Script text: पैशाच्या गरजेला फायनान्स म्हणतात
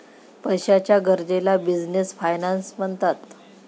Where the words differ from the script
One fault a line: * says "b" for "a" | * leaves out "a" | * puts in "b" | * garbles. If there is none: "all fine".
* puts in "बिझनेस"